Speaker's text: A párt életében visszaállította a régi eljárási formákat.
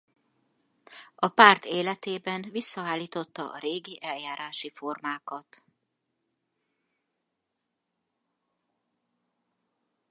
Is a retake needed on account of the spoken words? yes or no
no